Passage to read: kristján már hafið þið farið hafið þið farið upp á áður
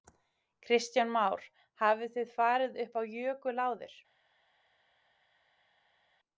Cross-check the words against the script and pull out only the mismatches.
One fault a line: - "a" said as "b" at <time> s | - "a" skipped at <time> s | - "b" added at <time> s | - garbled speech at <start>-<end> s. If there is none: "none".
- "hafið þið farið" skipped at 2.8 s
- "jökul" added at 3.2 s